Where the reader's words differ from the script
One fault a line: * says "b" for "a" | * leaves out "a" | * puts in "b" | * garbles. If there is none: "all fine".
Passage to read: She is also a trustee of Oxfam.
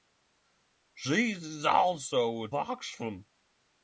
* leaves out "trustee of"